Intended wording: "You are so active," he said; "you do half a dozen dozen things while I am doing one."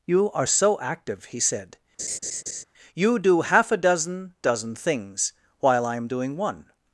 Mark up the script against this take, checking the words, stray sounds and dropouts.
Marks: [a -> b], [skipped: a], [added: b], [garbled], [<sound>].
"You are so active," he said; [laugh] "you do half a dozen dozen things while I am doing one."